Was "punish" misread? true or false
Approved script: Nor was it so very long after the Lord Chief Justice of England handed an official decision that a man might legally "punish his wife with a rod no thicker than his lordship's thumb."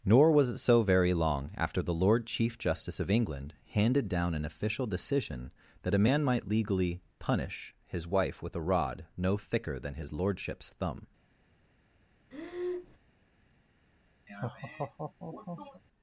false